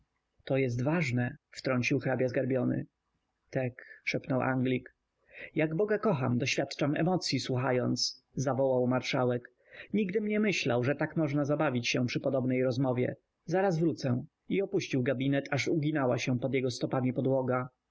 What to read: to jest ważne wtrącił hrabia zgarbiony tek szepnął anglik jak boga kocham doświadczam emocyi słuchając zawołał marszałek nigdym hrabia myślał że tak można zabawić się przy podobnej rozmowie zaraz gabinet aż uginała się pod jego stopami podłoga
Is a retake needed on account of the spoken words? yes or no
yes